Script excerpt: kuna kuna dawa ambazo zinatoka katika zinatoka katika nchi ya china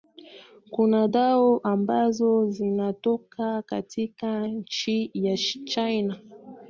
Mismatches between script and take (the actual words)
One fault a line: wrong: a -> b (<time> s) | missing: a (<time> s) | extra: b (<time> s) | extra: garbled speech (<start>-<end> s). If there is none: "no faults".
missing: kuna (1.1 s)
missing: zinatoka katika (4.5 s)